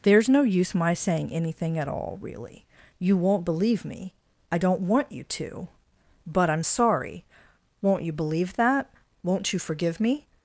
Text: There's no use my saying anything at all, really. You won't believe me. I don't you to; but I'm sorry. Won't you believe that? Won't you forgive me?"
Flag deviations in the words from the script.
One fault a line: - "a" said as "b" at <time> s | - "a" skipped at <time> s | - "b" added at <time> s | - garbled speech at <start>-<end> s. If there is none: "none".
- "want" added at 4.8 s